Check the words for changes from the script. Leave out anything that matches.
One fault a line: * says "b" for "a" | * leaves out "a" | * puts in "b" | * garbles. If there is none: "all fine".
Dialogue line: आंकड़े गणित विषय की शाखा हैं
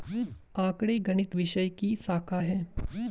all fine